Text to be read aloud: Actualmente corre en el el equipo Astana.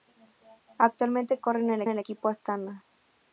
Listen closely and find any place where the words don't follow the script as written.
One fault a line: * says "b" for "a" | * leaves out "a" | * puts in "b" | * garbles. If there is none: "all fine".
all fine